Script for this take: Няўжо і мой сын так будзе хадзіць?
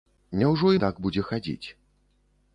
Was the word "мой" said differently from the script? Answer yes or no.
yes